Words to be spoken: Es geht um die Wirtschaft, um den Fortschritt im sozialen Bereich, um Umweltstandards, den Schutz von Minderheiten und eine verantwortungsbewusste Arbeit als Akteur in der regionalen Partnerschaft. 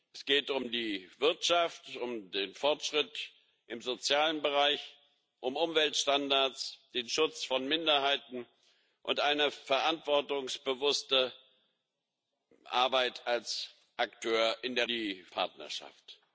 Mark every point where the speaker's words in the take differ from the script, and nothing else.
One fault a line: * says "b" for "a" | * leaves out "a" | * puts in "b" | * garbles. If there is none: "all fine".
* says "die" for "regionalen"